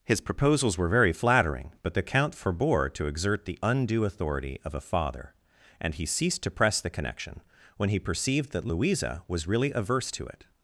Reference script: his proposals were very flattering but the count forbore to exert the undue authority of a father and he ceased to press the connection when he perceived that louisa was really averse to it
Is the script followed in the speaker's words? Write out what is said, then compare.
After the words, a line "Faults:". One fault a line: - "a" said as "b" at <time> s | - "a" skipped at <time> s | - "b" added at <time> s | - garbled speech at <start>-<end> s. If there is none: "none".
his proposals were very flattering but the count forbore to exert the undue authority of a father and he ceased to press the connection when he perceived that louisa was really averse to it
Faults:
none